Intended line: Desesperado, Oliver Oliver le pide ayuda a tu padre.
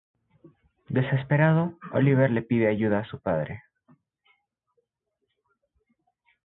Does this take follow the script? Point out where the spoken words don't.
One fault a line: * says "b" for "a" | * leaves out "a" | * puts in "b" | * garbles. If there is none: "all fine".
* leaves out "Oliver"
* says "su" for "tu"